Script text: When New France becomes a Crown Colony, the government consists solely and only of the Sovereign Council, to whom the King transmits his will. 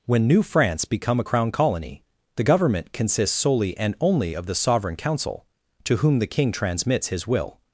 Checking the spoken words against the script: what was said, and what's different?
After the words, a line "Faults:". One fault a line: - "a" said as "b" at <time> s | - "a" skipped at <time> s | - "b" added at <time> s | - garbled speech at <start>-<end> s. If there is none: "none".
When New France become a Crown Colony, the government consists solely and only of the Sovereign Council, to whom the King transmits his will.
Faults:
- "becomes" said as "become" at 0.8 s